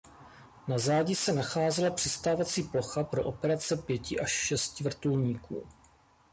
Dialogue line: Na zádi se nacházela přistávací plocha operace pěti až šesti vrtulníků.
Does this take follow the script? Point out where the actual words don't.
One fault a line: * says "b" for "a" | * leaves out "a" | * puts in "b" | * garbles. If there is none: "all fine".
* puts in "pro"